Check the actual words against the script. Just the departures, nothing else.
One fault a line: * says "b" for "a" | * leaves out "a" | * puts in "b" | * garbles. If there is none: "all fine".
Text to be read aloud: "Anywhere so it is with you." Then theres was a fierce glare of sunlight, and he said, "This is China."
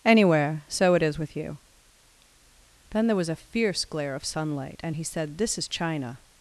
* says "there" for "theres"